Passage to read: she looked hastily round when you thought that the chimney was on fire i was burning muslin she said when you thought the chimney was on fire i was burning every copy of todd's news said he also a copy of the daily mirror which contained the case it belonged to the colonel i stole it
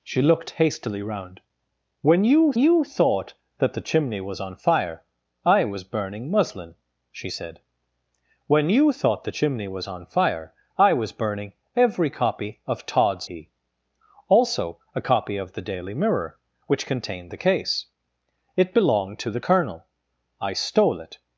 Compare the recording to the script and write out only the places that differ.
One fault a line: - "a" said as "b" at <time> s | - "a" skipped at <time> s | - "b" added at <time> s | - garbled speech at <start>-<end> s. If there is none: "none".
- "you" added at 2.6 s
- "news said" skipped at 13.3 s